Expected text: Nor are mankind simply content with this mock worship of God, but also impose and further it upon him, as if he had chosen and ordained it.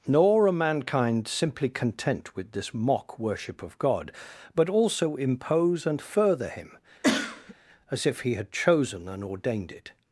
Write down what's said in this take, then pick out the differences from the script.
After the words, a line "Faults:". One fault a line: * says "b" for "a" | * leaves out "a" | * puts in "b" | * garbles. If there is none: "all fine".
Nor are mankind simply content with this mock worship of God, but also impose and further him, as if he had chosen and ordained it.
Faults:
* leaves out "it upon"